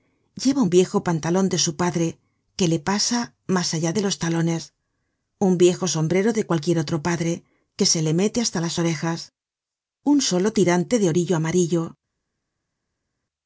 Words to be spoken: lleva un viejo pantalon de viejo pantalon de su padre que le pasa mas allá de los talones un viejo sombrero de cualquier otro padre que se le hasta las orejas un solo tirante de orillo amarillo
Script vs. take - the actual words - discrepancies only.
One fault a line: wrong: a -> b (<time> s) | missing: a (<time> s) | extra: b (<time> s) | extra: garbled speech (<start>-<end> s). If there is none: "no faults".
missing: viejo pantalon de (1.6 s)
extra: mete (8.1 s)